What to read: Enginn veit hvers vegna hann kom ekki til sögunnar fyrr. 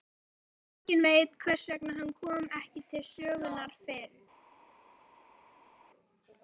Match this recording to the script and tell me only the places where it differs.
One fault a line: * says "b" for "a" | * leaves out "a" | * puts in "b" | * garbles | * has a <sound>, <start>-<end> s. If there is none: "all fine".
all fine